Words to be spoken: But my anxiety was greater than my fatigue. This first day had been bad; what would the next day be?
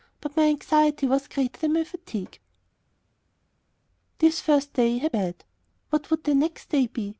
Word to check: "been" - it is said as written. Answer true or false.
false